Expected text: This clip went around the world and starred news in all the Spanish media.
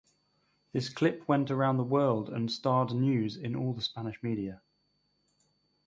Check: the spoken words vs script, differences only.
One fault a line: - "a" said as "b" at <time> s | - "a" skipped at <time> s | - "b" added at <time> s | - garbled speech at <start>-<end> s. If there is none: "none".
none